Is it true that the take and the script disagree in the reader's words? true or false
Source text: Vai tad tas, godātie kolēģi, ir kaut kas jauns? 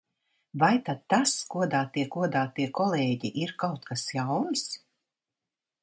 true